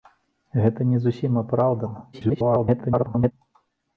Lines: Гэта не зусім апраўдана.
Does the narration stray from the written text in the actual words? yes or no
yes